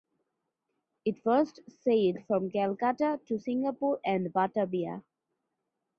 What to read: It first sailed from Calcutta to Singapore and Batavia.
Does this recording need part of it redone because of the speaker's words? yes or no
no